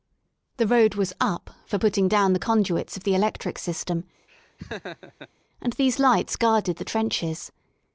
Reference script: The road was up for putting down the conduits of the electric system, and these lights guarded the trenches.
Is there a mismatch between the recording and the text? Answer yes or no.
no